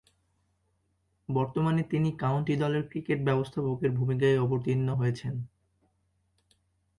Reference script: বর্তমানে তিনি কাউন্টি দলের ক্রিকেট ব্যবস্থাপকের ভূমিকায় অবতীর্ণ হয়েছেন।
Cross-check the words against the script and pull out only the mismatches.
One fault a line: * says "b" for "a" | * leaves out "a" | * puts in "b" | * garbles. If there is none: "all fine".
all fine